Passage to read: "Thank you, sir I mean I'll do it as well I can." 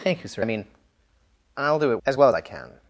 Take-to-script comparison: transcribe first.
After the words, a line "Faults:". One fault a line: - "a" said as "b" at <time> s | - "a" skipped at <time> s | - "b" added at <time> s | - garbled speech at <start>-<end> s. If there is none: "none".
"Thank you, sir I mean I'll do it as well I can."
Faults:
none